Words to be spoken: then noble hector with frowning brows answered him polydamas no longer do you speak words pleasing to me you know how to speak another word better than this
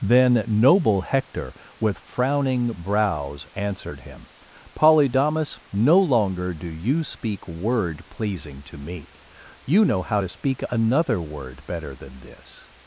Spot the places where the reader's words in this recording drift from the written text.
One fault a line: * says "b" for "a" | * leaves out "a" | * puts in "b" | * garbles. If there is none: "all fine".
* says "word" for "words"